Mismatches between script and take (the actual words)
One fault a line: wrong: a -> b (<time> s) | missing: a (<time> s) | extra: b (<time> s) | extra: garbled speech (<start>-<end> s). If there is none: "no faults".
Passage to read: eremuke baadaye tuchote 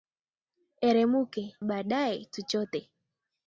no faults